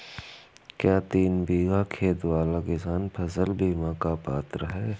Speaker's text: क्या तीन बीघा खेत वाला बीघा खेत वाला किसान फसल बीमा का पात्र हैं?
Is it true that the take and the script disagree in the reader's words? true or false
true